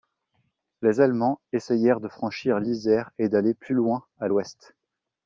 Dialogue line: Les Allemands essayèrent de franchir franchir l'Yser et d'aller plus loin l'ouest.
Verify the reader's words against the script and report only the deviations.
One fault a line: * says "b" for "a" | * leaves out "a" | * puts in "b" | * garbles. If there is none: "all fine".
* leaves out "franchir"
* puts in "à"